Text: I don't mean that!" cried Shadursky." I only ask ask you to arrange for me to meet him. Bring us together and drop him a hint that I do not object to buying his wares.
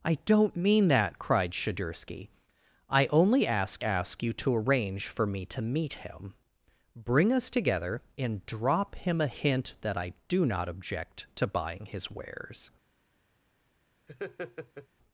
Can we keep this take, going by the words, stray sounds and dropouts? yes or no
no